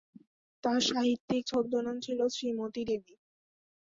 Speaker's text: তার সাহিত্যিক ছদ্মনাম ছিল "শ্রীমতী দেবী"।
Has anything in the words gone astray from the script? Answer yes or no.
no